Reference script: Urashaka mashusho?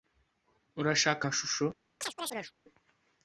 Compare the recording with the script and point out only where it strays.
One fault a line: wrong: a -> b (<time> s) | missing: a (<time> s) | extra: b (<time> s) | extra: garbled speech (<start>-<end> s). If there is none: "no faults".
no faults